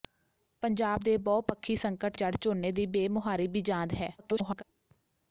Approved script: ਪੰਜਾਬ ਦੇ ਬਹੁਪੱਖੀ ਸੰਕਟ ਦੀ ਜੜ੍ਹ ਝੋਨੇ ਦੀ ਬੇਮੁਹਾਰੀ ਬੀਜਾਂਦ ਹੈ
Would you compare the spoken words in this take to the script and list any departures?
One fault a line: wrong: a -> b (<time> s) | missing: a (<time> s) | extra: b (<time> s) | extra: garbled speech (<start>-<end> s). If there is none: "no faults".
missing: ਦੀ (2.2 s)
extra: garbled speech (4.2-4.6 s)